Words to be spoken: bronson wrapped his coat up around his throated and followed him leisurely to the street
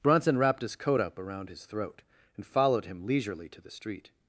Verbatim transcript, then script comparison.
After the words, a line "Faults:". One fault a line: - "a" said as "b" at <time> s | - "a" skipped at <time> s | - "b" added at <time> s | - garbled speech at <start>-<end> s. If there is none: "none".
bronson wrapped his coat up around his throat and followed him leisurely to the street
Faults:
- "throated" said as "throat" at 1.7 s